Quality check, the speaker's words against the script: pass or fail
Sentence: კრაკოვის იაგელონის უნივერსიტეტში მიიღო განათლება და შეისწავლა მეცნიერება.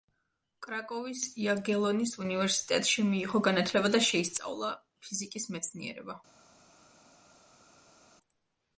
fail